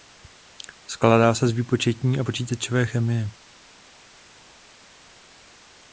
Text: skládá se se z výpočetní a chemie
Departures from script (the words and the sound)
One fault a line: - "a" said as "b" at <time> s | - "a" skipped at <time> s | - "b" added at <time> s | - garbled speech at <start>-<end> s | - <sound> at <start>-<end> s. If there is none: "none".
- "se" skipped at 1.5 s
- "počítačové" added at 2.2 s